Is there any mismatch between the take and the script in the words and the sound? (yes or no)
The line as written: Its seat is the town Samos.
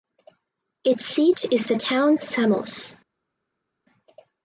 no